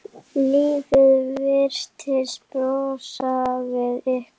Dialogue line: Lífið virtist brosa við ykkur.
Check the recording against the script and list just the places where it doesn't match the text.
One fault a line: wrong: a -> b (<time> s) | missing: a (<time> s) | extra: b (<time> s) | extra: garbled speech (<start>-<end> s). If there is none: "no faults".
no faults